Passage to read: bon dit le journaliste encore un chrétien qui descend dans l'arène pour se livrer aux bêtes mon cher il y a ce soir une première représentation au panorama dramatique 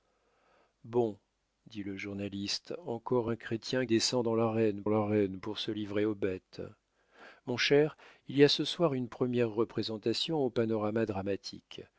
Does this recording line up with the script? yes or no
no